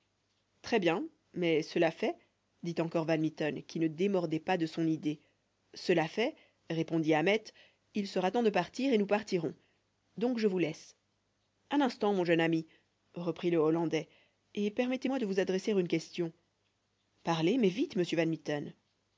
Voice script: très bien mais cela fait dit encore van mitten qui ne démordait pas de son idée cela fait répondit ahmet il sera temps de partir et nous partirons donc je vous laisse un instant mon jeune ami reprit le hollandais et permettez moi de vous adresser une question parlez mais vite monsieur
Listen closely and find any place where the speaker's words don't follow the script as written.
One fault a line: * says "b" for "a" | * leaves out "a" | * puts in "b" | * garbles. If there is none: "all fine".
all fine